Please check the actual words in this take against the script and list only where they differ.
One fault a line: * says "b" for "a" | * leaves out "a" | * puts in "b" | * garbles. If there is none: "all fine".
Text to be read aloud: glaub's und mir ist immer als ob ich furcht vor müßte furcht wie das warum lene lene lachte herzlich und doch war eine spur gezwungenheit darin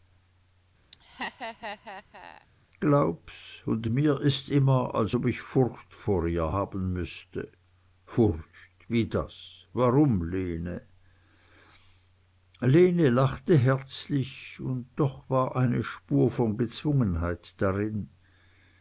* puts in "ihr haben"
* puts in "von"